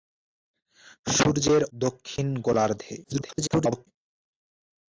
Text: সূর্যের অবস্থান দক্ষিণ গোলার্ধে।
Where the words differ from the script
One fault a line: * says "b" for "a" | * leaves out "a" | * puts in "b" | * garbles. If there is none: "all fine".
* leaves out "অবস্থান"
* garbles